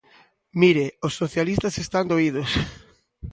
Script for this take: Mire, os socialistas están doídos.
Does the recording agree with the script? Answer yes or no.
yes